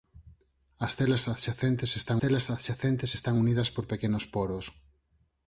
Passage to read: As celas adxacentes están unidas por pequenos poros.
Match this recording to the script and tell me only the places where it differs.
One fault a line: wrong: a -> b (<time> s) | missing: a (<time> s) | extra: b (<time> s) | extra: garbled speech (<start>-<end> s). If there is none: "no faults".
extra: celas adxacentes están (2.2 s)